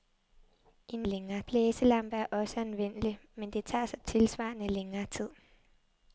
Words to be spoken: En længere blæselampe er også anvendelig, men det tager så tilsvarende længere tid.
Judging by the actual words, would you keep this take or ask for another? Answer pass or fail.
pass